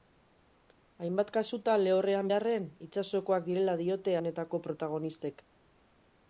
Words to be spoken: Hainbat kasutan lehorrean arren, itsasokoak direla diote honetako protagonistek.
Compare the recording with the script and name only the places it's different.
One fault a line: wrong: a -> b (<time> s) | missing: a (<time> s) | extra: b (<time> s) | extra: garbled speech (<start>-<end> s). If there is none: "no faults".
no faults